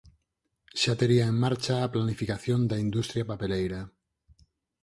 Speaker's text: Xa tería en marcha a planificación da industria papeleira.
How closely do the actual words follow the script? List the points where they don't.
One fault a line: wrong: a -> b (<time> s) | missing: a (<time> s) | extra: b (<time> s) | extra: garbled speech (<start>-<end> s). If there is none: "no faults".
no faults